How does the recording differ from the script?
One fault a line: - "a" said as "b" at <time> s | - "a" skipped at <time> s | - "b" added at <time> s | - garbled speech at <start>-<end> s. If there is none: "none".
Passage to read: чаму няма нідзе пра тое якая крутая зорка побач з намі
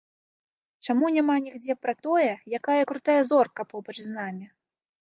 none